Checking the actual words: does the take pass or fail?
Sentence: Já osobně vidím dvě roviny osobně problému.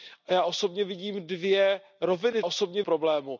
pass